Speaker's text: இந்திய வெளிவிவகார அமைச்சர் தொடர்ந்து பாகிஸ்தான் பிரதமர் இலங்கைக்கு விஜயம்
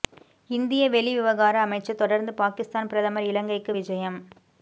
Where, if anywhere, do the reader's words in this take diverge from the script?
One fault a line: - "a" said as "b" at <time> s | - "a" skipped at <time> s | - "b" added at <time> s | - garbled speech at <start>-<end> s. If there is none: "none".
none